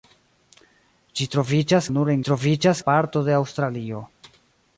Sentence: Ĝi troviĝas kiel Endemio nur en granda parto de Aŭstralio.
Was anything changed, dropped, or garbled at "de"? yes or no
no